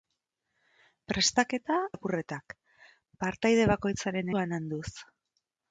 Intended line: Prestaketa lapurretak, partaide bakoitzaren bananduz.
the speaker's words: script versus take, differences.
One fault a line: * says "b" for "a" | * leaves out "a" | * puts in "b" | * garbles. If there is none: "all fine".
all fine